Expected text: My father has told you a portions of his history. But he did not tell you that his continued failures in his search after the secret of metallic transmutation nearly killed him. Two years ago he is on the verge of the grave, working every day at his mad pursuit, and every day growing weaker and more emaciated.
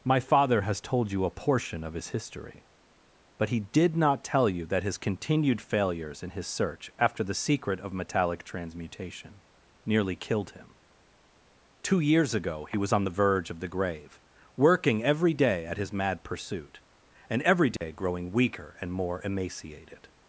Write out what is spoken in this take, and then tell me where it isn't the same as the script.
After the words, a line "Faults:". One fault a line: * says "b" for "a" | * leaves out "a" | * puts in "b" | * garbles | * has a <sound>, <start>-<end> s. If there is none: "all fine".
My father has told you a portion of his history. But he did not tell you that his continued failures in his search after the secret of metallic transmutation nearly killed him. Two years ago he was on the verge of the grave, working every day at his mad pursuit, and every day growing weaker and more emaciated.
Faults:
* says "portion" for "portions"
* says "was" for "is"
* has a dropout, 17.8-17.8 s